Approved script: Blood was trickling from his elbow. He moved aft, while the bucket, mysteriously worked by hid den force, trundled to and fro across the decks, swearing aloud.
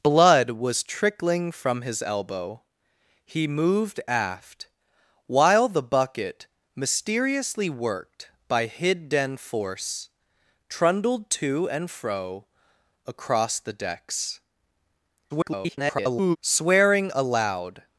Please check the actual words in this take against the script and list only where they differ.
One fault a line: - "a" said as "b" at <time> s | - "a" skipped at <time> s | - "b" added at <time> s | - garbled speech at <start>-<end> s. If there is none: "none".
- garbled speech at 15.3-16.4 s